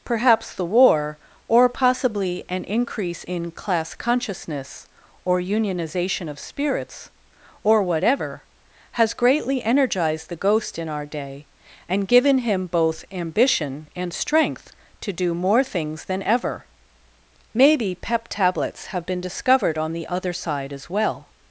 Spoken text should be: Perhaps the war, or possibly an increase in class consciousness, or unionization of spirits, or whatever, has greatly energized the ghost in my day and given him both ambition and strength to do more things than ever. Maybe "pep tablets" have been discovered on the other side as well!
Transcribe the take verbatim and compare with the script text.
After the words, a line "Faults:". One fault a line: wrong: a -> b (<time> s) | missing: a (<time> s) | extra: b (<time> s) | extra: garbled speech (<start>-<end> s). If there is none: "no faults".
Perhaps the war, or possibly an increase in class consciousness, or unionization of spirits, or whatever, has greatly energized the ghost in our day and given him both ambition and strength to do more things than ever. Maybe "pep tablets" have been discovered on the other side as well!
Faults:
wrong: my -> our (10.9 s)